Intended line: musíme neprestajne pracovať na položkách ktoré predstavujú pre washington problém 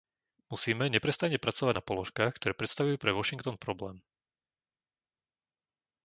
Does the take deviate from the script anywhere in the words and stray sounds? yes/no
no